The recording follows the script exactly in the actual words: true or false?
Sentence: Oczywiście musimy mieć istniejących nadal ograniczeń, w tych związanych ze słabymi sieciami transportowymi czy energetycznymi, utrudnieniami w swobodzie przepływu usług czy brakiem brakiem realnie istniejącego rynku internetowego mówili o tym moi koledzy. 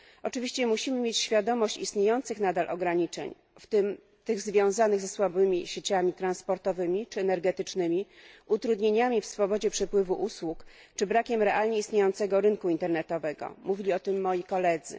false